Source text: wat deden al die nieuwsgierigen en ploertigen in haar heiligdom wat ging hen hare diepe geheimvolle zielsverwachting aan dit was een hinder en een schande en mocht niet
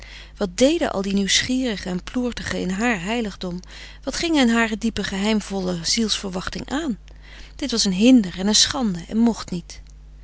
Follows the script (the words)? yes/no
yes